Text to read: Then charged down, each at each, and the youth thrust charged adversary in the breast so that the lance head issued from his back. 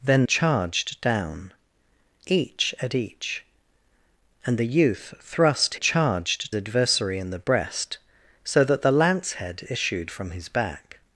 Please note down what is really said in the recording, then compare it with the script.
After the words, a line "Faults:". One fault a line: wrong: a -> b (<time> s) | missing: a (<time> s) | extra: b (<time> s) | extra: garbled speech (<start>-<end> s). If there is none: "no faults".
Then charged down, each at each, and the youth thrust charged adversary in the breast so that the lance head issued from his back.
Faults:
no faults